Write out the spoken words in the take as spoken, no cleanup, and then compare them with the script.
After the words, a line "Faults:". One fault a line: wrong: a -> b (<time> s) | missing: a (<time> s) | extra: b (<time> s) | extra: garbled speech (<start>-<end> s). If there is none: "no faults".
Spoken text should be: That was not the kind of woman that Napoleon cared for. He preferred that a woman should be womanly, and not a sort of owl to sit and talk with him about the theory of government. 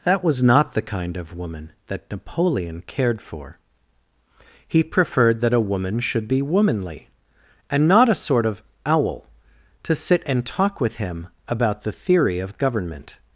That was not the kind of woman that Napoleon cared for. He preferred that a woman should be womanly, and not a sort of owl to sit and talk with him about the theory of government.
Faults:
no faults